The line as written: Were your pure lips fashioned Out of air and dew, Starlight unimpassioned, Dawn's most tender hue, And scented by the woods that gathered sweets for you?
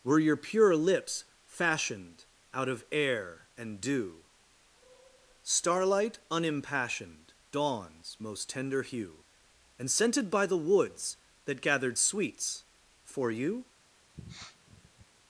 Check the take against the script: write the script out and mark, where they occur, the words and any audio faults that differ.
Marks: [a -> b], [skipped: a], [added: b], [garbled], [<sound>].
Were your pure lips fashioned Out of air and dew, Starlight unimpassioned, Dawn's most tender hue, And scented by the woods that gathered sweets for you? [sniff]